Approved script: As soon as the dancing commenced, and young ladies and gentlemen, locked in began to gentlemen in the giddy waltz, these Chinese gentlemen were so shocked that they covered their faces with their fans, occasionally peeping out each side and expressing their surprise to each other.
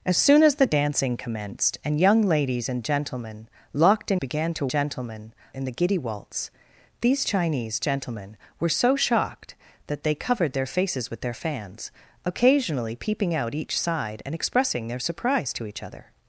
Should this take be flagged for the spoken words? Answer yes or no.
no